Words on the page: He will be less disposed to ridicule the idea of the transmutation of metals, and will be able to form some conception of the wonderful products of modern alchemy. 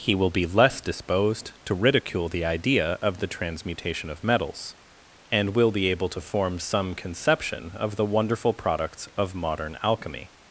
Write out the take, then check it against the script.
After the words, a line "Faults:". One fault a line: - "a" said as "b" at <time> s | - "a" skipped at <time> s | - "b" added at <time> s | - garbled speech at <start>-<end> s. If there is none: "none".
He will be less disposed to ridicule the idea of the transmutation of metals, and will be able to form some conception of the wonderful products of modern alchemy.
Faults:
none